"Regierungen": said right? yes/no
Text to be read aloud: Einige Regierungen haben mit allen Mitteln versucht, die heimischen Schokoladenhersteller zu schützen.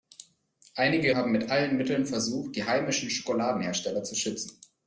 no